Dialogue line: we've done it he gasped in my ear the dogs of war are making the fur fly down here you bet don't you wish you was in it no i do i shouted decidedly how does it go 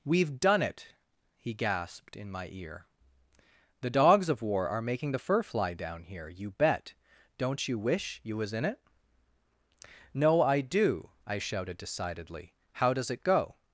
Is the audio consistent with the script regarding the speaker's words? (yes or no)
yes